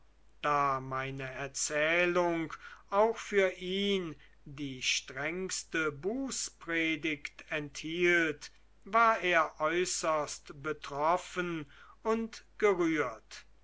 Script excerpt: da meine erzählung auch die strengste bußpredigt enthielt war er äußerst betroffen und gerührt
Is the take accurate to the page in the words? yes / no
no